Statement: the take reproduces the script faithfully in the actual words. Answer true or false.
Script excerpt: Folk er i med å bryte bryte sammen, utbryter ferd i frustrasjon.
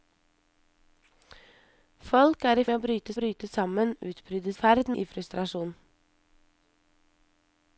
true